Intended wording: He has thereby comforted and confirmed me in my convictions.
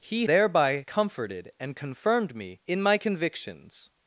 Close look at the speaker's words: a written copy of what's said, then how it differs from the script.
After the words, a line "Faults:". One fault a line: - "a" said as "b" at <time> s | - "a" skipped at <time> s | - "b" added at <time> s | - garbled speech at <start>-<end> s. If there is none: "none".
He thereby comforted and confirmed me in my convictions.
Faults:
- "has" skipped at 0.2 s